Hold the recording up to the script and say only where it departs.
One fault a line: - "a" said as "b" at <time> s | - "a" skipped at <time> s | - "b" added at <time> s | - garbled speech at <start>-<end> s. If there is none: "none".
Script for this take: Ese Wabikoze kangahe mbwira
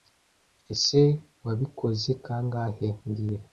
none